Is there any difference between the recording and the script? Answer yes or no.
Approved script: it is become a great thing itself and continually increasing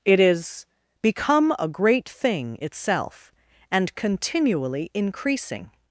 no